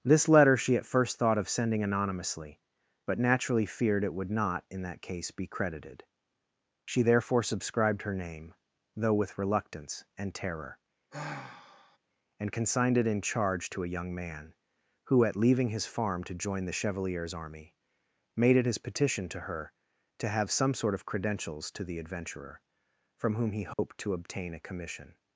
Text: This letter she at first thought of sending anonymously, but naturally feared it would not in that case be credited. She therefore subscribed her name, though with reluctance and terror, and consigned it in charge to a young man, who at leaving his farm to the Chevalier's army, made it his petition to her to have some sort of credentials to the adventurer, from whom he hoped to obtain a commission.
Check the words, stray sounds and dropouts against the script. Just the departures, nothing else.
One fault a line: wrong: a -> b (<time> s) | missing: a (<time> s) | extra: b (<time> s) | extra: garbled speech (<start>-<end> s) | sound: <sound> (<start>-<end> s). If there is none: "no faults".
sound: sigh (11.1-12.0 s)
extra: join (16.3 s)
sound: dropout (23.7-23.8 s)